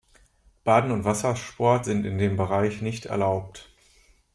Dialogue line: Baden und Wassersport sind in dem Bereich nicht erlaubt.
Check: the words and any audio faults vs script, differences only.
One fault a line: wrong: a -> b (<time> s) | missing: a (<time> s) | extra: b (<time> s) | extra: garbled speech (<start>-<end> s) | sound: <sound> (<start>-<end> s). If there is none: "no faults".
no faults